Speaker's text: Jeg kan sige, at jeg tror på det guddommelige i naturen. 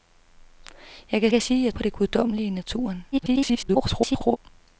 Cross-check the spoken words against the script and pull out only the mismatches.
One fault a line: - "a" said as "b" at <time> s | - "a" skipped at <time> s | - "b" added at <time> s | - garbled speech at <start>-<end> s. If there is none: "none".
- "kan" added at 1.3 s
- "tror" skipped at 1.7 s
- garbled speech at 3.1-4.4 s